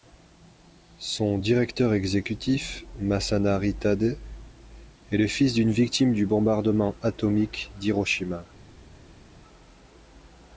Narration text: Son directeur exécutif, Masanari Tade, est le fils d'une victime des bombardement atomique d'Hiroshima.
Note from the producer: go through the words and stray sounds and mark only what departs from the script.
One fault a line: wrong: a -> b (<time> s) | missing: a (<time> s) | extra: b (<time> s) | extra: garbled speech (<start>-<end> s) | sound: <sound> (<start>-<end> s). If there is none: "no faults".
wrong: des -> du (6.1 s)